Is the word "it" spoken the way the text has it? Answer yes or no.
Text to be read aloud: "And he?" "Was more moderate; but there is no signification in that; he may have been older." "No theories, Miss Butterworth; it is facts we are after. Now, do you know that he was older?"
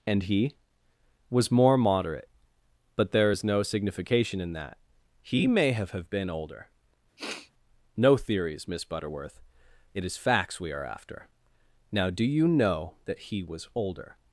yes